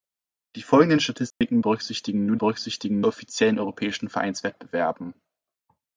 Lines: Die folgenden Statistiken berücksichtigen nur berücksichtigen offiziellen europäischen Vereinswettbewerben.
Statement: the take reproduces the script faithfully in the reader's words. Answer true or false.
true